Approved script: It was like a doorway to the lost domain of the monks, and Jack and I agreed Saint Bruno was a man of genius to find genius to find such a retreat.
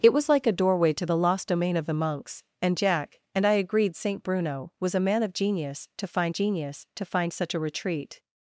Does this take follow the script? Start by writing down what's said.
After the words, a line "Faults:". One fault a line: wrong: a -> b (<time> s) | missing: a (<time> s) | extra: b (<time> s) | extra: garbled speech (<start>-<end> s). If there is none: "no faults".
It was like a doorway to the lost domain of the monks, and Jack and I agreed Saint Bruno was a man of genius to find genius to find such a retreat.
Faults:
no faults